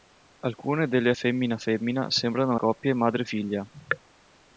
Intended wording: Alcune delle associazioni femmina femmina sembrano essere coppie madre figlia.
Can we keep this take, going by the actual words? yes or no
no